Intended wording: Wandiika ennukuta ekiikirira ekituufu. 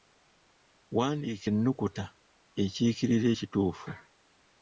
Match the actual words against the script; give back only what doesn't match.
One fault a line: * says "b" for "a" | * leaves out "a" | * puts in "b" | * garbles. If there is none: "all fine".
all fine